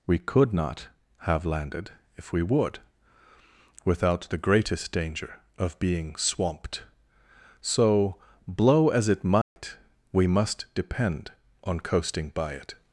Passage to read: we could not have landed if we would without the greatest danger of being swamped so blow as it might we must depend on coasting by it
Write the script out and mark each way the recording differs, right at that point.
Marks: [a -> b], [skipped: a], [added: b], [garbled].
we could not have landed if we would without the greatest danger of being swamped so blow as it might we must depend on coasting by it